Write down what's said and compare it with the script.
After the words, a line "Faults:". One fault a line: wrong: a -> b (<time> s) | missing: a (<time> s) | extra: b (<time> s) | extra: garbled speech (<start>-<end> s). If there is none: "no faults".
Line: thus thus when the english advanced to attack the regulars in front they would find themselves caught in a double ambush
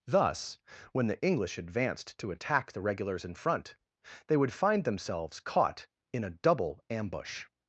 thus when the english advanced to attack the regulars in front they would find themselves caught in a double ambush
Faults:
missing: thus (0.6 s)